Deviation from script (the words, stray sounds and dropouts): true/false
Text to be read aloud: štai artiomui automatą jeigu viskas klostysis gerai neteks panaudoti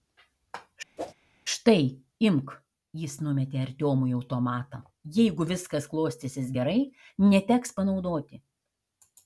true